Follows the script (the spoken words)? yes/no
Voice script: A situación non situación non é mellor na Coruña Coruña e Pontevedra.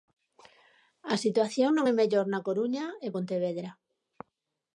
no